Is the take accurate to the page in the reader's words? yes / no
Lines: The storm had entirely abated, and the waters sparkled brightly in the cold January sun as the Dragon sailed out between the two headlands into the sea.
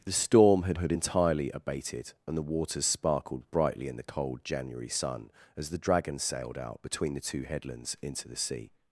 no